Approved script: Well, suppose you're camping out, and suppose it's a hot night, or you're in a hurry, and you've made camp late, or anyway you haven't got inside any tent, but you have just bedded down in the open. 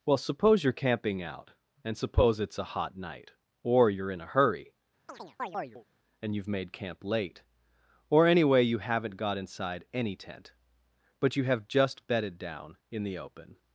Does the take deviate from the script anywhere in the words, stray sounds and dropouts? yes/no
yes